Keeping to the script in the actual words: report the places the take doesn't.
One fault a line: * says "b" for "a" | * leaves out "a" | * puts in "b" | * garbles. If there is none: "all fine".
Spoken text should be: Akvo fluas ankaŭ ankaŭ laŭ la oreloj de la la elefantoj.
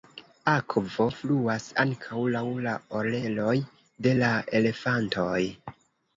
* leaves out "ankaŭ"
* leaves out "la"